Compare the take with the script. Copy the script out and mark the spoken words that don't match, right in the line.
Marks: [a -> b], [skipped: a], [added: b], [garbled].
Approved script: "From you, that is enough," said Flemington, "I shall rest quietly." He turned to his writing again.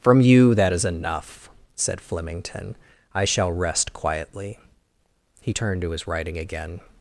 "From you, that is enough," said Flemington, "I shall rest quietly." He turned to his writing again.